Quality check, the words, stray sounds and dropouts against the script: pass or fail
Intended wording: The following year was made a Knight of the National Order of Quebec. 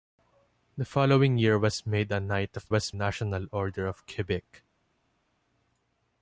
fail